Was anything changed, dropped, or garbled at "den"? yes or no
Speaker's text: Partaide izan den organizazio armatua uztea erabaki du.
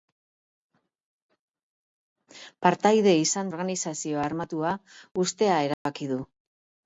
yes